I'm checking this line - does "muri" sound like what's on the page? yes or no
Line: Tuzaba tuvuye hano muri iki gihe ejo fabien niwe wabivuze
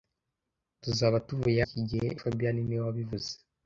no